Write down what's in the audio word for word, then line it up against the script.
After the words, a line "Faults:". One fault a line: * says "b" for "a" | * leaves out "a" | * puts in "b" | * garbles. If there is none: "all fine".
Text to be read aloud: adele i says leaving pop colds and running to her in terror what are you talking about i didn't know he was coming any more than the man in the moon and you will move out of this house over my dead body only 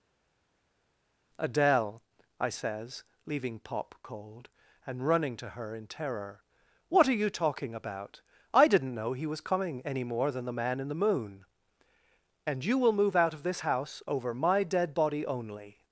adele i says leaving pop cold and running to her in terror what are you talking about i didn't know he was coming any more than the man in the moon and you will move out of this house over my dead body only
Faults:
* says "cold" for "colds"